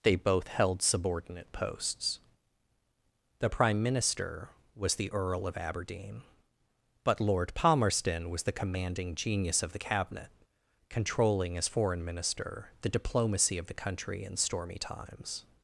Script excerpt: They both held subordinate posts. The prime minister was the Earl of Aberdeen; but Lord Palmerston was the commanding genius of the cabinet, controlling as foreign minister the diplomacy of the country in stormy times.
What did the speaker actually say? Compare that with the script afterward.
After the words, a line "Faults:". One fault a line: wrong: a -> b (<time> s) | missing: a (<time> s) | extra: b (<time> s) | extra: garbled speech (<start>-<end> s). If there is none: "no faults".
They both held subordinate posts. The prime minister was the Earl of Aberdeen; but Lord Palmerston was the commanding genius of the cabinet, controlling as foreign minister the diplomacy of the country in stormy times.
Faults:
no faults